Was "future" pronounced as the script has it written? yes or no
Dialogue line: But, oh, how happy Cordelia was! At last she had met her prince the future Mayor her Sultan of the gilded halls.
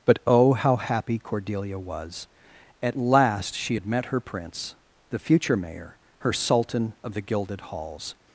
yes